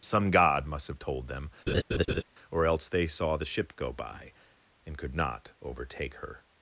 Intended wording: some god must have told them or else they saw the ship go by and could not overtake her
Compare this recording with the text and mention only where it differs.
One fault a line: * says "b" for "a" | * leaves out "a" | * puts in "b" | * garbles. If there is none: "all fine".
all fine